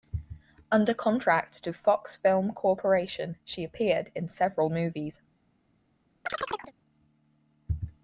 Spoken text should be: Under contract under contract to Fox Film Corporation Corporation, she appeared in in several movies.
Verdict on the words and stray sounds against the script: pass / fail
fail